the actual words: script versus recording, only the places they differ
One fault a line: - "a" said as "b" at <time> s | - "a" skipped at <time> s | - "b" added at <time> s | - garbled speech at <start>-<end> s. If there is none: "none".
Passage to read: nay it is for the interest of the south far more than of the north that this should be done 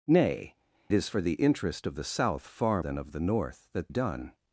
- "it" skipped at 0.6 s
- "more" skipped at 2.8 s
- "this should be" skipped at 3.9 s